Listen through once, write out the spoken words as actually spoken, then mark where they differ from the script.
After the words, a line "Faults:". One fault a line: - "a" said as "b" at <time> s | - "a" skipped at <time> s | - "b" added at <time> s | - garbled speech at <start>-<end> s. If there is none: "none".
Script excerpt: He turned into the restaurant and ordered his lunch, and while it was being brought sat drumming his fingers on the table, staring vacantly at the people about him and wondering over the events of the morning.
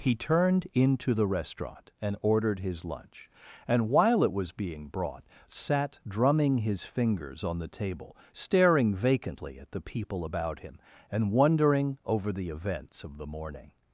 He turned into the restaurant and ordered his lunch, and while it was being brought sat drumming his fingers on the table, staring vacantly at the people about him and wondering over the events of the morning.
Faults:
none